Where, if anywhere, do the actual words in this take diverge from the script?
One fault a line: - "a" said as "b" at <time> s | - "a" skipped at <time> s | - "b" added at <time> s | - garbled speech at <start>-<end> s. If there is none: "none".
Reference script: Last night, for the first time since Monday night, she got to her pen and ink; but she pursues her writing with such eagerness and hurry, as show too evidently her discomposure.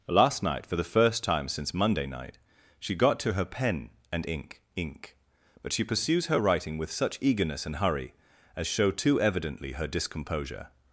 - "ink" added at 4.8 s